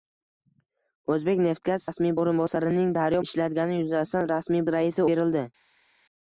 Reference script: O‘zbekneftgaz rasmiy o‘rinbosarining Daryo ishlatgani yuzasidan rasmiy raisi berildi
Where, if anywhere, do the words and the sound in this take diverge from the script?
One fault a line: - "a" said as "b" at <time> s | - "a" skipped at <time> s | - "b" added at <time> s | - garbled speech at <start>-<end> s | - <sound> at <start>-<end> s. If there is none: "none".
none